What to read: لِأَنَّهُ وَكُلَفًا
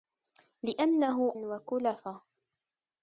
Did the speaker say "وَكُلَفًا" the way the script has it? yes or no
yes